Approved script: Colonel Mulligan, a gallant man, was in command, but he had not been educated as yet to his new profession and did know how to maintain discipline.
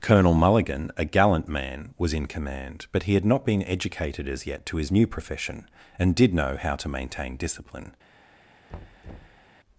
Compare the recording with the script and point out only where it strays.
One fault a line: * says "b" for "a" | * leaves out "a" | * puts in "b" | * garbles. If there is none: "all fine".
all fine